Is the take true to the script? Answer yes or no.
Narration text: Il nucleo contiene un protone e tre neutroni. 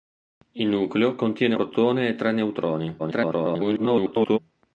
no